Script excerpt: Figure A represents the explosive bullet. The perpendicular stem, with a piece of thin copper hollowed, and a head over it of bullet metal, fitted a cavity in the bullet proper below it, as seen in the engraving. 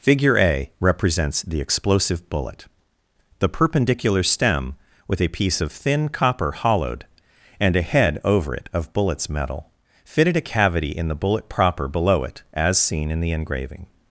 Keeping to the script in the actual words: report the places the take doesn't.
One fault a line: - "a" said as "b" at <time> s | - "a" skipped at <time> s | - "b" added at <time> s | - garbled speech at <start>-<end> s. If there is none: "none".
- "bullet" said as "bullets" at 8.9 s